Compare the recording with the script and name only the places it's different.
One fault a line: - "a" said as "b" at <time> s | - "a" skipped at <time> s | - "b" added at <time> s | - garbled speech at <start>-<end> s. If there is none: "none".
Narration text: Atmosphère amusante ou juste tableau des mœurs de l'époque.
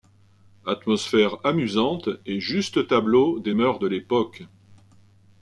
- "ou" said as "et" at 2.2 s